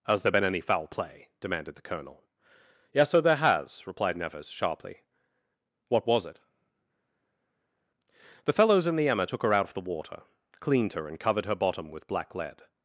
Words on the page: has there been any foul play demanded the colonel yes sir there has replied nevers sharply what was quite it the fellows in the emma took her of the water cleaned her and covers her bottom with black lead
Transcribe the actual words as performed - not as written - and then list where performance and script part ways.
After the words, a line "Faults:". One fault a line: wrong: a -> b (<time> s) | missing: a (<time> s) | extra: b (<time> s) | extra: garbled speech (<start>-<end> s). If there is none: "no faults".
has there been any foul play demanded the colonel yes sir there has replied nevers sharply what was it the fellows in the emma took her out of the water cleaned her and covered her bottom with black lead
Faults:
missing: quite (6.2 s)
extra: out (9.5 s)
wrong: covers -> covered (11.2 s)